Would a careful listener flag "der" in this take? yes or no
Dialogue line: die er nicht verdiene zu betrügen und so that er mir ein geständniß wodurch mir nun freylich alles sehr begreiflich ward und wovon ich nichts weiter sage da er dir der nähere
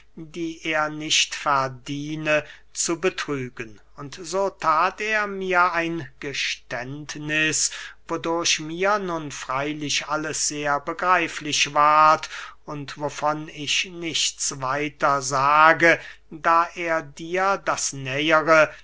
yes